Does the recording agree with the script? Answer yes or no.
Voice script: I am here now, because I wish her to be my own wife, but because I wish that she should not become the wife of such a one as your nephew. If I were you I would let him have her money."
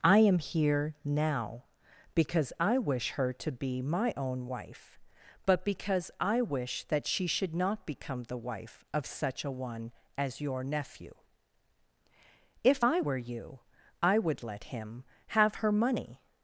yes